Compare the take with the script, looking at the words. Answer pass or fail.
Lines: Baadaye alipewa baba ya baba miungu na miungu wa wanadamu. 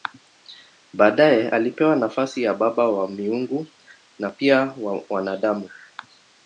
fail